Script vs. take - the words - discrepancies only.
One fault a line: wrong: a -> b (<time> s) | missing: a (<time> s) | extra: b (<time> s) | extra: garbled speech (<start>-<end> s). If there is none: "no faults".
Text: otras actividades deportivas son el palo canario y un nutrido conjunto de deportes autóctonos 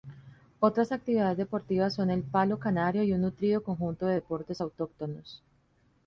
no faults